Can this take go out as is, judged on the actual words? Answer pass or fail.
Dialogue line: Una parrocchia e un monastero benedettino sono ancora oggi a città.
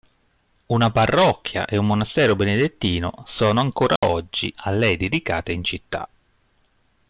fail